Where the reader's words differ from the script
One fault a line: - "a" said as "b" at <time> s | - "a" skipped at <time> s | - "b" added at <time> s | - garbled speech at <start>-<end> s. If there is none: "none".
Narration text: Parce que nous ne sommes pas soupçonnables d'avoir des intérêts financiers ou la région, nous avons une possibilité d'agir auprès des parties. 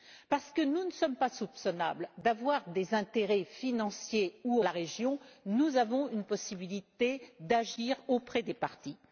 none